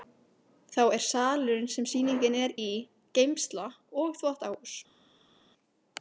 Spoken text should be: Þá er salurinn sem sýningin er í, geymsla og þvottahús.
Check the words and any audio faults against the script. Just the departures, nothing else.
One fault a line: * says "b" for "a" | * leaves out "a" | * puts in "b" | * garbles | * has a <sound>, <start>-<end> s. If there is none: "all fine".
all fine